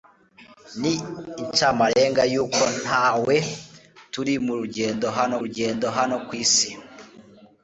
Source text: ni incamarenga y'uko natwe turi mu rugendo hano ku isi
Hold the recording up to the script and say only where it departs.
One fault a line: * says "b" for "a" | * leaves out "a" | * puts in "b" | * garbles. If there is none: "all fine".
* puts in "rugendo hano"